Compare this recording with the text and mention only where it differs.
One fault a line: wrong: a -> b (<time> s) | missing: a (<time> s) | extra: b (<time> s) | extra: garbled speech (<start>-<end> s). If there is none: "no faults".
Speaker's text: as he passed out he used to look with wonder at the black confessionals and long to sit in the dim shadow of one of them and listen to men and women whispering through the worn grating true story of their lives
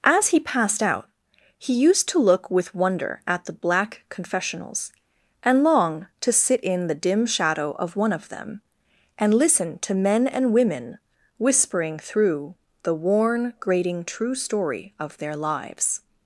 no faults